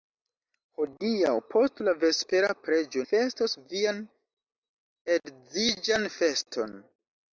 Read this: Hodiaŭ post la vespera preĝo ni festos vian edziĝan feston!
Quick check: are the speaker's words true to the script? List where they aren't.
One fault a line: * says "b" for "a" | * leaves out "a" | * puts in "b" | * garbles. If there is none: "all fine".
* leaves out "ni"